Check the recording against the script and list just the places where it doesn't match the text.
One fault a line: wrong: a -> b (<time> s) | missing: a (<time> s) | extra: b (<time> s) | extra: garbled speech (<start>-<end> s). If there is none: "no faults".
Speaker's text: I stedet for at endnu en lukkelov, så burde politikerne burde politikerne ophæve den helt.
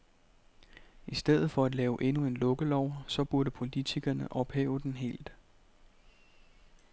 extra: lave (1.8 s)
missing: burde politikerne (4.3 s)